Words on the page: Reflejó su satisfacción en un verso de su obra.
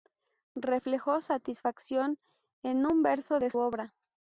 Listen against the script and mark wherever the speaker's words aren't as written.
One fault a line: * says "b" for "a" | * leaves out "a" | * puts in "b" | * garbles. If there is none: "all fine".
* leaves out "su"
* leaves out "su"